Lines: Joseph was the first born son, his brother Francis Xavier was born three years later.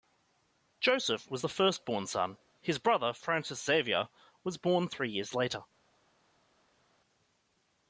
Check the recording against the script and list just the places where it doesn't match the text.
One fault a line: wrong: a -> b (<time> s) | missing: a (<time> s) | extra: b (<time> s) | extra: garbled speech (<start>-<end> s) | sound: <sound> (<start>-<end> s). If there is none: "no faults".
no faults